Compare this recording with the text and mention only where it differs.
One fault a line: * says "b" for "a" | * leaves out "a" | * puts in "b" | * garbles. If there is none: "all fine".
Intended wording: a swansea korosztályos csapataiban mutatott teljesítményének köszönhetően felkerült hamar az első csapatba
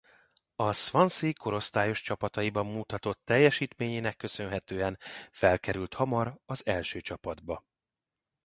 all fine